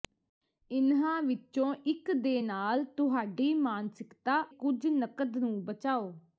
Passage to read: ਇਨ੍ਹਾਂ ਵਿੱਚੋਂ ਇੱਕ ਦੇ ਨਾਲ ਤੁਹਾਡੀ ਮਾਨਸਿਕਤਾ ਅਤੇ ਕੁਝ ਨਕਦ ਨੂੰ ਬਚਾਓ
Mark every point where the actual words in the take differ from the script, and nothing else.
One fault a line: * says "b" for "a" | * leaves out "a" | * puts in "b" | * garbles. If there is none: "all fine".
* leaves out "ਅਤੇ"